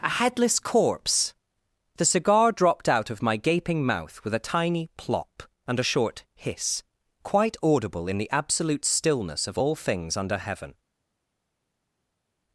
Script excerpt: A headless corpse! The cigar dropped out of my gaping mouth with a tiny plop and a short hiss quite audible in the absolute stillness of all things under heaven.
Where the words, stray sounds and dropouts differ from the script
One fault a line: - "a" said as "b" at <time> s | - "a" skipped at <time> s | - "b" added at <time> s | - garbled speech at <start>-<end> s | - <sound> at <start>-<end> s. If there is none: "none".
none